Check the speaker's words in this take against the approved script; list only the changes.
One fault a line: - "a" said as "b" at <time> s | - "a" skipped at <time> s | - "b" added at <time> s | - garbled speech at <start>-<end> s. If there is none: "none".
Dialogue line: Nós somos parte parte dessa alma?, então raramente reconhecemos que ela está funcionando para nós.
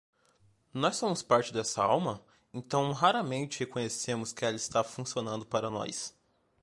- "parte" skipped at 1.5 s